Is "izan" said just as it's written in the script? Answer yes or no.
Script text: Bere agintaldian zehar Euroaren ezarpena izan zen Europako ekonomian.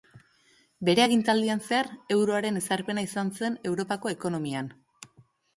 yes